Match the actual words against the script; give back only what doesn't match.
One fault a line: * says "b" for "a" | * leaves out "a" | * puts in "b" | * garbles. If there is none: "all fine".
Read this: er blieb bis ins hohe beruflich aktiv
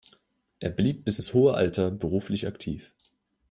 * puts in "alter"